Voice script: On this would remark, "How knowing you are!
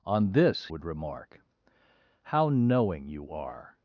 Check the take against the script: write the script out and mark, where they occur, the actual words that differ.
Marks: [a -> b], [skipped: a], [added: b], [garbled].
On this would remark, "How knowing you are!